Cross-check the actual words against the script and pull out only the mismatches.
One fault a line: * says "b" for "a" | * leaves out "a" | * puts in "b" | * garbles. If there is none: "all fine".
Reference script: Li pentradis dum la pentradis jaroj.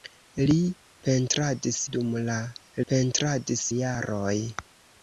all fine